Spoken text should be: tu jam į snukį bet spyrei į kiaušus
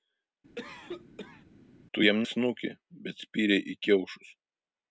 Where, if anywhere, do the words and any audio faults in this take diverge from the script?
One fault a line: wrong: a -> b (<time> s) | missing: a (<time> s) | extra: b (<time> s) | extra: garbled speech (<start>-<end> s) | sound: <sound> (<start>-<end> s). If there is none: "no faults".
sound: cough (0.6-1.4 s)